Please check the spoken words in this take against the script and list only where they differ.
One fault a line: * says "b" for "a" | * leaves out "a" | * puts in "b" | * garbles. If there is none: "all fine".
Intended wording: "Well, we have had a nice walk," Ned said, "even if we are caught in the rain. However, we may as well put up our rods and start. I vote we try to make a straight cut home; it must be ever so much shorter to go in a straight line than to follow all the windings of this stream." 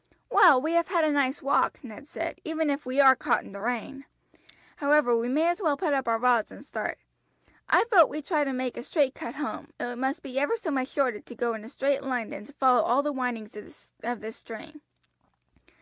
all fine